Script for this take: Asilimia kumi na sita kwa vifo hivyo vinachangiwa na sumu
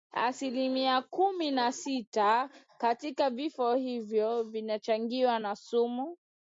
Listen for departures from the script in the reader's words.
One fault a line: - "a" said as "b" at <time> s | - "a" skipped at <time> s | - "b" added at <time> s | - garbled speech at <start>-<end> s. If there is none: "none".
- "kwa" said as "katika" at 2.8 s